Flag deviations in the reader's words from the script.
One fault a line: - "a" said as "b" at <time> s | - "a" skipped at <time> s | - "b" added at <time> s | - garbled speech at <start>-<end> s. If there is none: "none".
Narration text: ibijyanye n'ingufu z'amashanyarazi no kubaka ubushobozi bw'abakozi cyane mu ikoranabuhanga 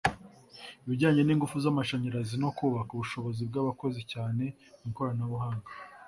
none